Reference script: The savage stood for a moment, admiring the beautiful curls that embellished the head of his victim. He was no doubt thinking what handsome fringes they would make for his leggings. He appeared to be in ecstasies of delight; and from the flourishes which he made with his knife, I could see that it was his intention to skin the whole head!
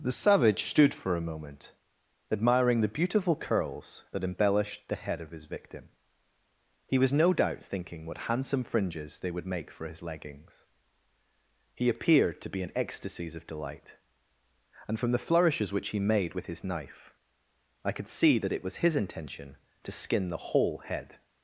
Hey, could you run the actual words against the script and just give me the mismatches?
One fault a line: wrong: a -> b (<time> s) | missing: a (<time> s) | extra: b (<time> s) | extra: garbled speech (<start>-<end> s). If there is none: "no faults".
no faults